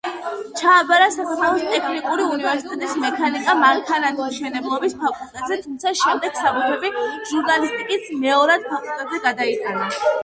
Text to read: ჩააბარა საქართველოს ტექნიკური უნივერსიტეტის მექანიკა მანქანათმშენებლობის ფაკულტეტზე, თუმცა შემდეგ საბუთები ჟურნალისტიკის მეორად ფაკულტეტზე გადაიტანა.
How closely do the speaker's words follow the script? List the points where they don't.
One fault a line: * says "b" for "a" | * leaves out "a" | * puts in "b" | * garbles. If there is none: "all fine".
all fine